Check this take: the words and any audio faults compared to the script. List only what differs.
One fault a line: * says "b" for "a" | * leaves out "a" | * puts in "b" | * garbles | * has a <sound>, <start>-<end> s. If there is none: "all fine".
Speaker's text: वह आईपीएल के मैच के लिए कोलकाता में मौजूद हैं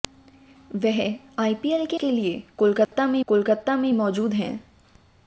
* leaves out "मैच"
* has a dropout, 2.8-2.9 s
* puts in "कोलकाता में"